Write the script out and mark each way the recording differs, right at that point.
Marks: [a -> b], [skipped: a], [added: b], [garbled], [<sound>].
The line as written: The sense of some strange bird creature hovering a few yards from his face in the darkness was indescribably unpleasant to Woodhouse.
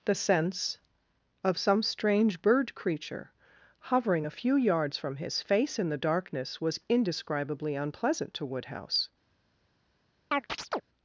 The sense of some strange bird creature hovering a few yards from his face in the darkness was indescribably unpleasant to Woodhouse. [chirp]